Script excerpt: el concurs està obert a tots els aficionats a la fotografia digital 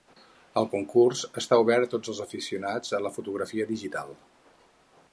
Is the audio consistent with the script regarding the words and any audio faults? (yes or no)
yes